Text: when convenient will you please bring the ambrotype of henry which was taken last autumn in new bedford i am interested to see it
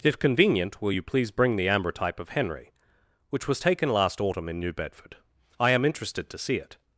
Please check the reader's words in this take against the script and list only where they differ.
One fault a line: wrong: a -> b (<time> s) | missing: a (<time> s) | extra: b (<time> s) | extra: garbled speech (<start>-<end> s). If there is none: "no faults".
wrong: when -> if (0.0 s)